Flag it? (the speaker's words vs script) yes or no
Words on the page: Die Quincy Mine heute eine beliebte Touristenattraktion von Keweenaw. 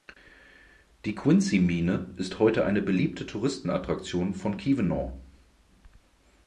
yes